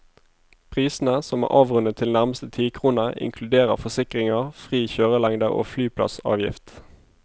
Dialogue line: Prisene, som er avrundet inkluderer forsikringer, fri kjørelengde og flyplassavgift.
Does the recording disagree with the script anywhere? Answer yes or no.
yes